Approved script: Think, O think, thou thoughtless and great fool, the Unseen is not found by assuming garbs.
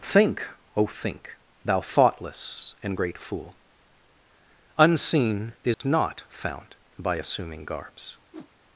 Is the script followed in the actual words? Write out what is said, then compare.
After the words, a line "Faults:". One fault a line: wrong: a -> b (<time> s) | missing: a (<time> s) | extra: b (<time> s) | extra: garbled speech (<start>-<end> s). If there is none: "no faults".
Think, O think, thou thoughtless and great fool, Unseen is not found by assuming garbs.
Faults:
missing: the (3.6 s)